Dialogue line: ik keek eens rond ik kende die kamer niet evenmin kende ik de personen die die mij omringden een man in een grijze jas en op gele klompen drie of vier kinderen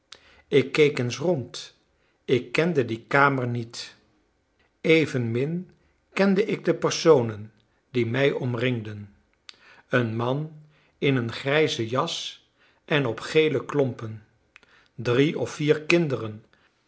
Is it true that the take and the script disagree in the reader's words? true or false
true